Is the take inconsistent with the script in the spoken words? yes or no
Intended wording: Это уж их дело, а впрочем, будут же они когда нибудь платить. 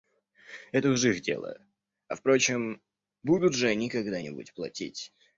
no